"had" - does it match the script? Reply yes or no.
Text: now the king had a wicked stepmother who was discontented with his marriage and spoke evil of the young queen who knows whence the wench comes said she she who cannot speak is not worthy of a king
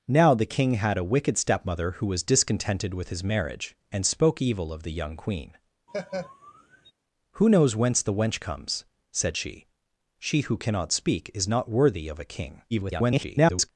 yes